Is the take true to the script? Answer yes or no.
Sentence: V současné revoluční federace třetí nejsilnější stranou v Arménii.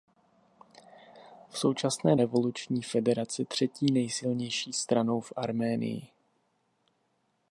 yes